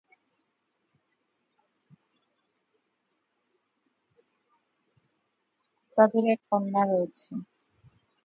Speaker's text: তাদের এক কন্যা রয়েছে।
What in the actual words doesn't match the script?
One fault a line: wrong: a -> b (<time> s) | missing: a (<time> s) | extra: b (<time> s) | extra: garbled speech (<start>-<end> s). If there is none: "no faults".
no faults